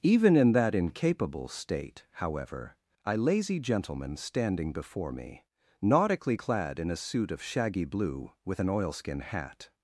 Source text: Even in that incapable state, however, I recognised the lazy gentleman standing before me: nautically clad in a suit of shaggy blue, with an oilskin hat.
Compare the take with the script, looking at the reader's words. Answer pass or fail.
fail